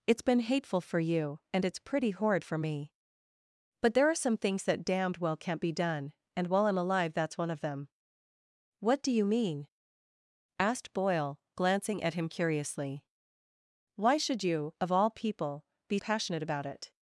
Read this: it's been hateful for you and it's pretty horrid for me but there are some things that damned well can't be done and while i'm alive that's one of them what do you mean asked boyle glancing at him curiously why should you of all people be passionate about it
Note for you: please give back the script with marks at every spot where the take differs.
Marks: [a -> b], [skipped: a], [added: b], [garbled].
it's been hateful for you and it's pretty horrid for me but there are some things that damned well can't be done and while i'm alive that's one of them what do you mean asked boyle glancing at him curiously why should you of all people be passionate about it